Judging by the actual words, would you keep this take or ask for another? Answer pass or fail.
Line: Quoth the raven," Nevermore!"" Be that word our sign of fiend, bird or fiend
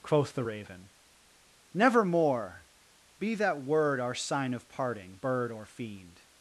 fail